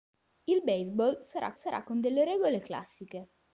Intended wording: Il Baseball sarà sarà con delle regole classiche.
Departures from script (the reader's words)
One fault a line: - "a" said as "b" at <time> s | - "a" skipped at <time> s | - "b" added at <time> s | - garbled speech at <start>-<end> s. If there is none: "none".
none